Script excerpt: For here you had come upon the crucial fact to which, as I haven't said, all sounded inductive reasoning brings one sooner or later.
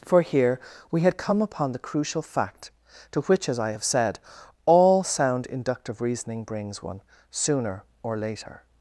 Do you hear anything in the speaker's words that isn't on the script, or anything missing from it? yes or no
yes